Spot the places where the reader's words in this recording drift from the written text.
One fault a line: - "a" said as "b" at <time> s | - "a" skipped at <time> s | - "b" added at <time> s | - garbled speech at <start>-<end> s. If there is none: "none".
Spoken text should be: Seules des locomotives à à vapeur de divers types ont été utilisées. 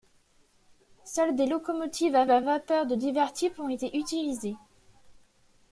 none